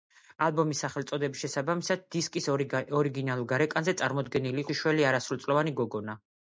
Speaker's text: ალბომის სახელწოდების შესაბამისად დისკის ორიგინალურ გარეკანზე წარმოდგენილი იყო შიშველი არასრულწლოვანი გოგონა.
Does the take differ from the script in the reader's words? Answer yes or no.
yes